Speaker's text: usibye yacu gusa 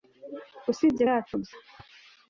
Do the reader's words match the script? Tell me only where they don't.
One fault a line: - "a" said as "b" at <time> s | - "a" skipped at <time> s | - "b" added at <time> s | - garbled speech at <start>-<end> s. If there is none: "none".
none